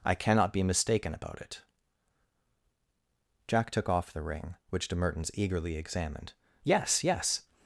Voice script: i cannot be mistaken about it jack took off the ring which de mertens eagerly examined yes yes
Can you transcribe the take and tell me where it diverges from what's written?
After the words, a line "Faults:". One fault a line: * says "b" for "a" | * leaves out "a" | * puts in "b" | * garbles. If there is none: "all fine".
i cannot be mistaken about it jack took off the ring which de mertens eagerly examined yes yes
Faults:
all fine